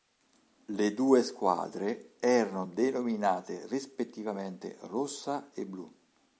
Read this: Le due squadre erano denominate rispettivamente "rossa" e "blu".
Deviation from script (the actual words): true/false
false